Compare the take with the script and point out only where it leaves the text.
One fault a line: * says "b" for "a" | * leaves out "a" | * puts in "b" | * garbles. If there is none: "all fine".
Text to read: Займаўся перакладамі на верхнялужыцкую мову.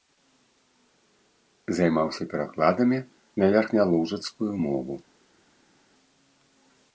all fine